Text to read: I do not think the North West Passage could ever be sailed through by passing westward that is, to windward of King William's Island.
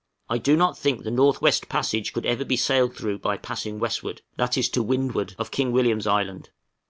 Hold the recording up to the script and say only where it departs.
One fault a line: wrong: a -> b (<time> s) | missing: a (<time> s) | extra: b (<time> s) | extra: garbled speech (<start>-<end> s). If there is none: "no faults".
no faults